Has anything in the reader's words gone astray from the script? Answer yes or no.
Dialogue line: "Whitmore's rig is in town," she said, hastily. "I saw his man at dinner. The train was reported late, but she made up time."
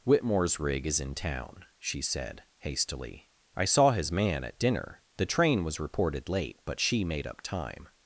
no